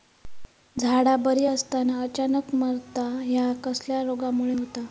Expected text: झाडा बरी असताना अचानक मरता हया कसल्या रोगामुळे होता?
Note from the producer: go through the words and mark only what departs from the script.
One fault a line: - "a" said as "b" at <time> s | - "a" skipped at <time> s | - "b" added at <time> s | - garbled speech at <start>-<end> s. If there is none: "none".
none